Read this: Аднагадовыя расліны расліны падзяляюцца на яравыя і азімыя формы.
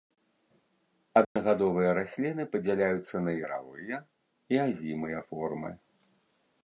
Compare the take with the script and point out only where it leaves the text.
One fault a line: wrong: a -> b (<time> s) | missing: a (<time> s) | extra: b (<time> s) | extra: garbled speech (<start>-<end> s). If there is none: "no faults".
missing: расліны (2.4 s)